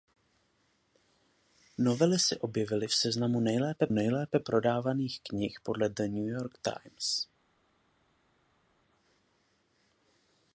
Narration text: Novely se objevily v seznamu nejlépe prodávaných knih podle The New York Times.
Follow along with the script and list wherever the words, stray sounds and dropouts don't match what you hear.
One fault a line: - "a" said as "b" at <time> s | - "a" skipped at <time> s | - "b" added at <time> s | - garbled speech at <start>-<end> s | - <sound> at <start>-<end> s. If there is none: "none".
- "nejlépe" added at 3.9 s